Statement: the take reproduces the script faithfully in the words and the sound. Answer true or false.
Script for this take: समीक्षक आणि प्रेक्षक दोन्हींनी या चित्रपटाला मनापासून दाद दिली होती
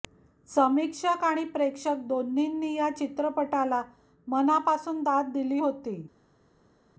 true